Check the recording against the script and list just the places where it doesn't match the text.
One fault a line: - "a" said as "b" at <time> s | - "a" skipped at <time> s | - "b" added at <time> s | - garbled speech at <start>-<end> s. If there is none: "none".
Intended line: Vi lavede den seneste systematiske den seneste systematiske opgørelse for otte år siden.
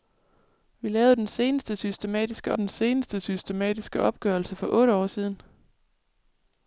none